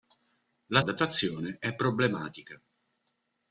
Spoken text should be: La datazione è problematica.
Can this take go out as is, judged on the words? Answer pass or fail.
pass